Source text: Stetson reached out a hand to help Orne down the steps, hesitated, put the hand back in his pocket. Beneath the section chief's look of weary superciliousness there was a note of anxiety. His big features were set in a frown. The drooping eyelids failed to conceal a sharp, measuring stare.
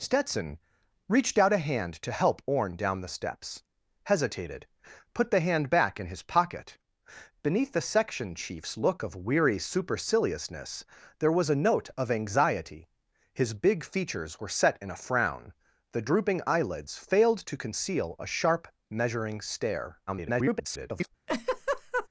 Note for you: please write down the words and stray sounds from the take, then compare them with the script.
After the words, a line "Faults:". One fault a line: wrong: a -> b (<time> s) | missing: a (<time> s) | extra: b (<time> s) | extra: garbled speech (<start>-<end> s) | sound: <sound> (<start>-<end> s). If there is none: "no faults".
Stetson reached out a hand to help Orne down the steps, hesitated, put the hand back in his pocket. Beneath the section chief's look of weary superciliousness there was a note of anxiety. His big features were set in a frown. The drooping eyelids failed to conceal a sharp, measuring stare. [garbled]
Faults:
extra: garbled speech (20.1-21.1 s)
sound: laugh (21.3-22.1 s)